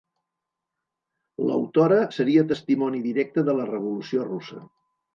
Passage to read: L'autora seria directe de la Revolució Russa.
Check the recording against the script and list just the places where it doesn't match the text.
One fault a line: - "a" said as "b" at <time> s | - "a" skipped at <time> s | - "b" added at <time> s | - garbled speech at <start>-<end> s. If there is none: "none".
- "testimoni" added at 2.5 s